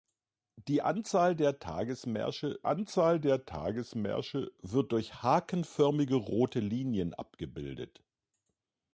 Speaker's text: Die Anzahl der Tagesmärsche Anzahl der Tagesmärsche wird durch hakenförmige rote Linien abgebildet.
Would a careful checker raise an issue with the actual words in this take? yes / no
no